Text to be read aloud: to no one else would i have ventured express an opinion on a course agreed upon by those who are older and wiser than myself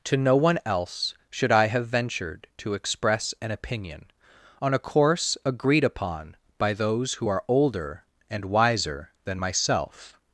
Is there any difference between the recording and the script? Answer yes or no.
yes